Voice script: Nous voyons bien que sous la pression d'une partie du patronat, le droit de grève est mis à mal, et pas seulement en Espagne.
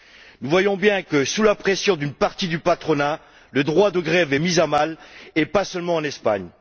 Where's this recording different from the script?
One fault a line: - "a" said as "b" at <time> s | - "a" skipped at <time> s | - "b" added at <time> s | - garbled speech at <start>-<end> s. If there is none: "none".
none